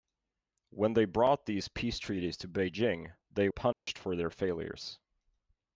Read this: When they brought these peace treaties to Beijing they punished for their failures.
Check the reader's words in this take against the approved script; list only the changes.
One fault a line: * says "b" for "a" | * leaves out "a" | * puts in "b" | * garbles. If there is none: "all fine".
all fine